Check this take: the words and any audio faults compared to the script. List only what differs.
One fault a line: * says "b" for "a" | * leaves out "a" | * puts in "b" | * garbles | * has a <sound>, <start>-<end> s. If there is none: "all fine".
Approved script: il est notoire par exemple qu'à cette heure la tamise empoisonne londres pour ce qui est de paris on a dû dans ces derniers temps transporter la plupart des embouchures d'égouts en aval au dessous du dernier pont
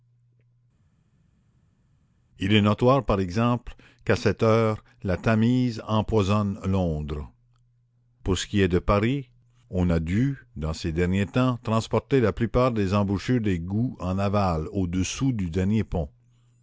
all fine